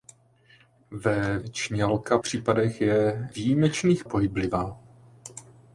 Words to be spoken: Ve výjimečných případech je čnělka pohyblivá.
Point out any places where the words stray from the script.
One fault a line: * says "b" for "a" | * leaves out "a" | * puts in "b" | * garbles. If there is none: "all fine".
* says "čnělka" for "výjimečných"
* says "výjimečných" for "čnělka"